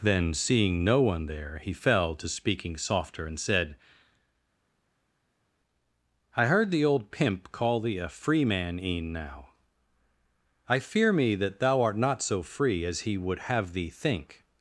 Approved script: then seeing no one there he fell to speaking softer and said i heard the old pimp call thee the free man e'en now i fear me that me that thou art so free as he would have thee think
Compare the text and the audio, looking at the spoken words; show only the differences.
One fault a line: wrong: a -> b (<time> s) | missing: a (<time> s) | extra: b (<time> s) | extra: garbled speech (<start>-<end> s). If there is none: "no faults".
wrong: the -> a (8.0 s)
missing: me that (11.6 s)
extra: not (12.0 s)